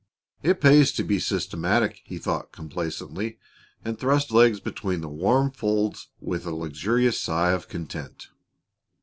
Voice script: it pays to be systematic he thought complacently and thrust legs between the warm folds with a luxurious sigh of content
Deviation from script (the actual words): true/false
false